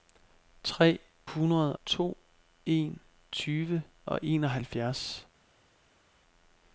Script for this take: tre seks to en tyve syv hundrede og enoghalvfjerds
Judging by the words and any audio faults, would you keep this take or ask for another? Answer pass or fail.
fail